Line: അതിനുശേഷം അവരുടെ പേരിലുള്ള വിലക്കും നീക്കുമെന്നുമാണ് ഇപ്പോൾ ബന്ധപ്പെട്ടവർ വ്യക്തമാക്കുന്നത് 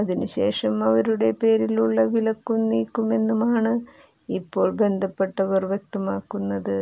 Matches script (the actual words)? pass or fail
pass